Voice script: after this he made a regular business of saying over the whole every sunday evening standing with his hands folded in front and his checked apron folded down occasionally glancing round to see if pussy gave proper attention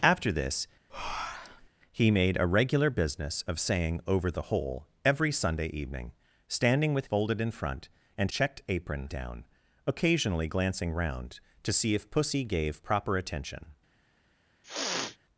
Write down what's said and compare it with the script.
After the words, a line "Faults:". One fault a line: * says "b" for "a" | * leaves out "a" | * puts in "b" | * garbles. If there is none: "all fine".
after this he made a regular business of saying over the whole every sunday evening standing with folded in front and checked apron down occasionally glancing round to see if pussy gave proper attention
Faults:
* leaves out "his hands"
* leaves out "his"
* leaves out "folded"